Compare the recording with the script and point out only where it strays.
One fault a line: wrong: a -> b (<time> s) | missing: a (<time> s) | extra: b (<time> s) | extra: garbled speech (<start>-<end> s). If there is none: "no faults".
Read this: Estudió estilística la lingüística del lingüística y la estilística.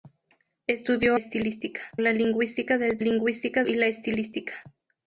no faults